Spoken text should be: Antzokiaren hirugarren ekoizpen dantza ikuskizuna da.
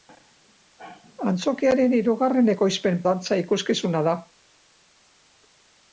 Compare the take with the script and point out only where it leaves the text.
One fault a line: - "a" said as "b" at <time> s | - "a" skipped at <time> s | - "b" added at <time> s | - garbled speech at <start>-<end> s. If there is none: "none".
none